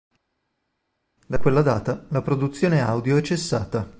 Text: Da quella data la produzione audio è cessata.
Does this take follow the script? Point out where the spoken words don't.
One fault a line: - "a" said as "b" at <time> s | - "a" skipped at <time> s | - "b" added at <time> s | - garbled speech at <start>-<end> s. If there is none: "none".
none